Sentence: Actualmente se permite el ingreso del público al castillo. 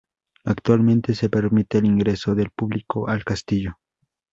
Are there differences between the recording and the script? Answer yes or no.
no